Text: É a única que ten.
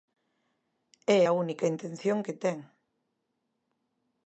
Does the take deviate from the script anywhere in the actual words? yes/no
yes